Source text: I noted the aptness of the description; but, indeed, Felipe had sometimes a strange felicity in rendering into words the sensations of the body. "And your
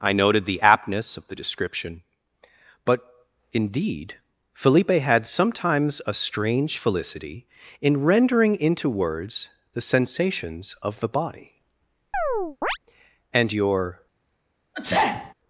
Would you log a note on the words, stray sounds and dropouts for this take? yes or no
yes